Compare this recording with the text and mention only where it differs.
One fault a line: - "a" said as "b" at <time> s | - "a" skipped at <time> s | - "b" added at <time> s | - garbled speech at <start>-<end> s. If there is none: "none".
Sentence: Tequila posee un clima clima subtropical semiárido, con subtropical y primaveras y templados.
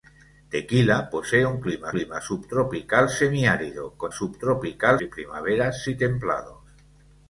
none